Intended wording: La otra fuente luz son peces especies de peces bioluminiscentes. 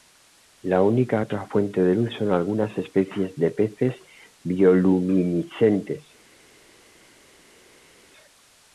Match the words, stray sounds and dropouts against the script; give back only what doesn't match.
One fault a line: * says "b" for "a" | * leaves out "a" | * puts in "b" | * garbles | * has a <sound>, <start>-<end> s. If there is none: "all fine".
* puts in "única"
* puts in "de"
* says "algunas" for "peces"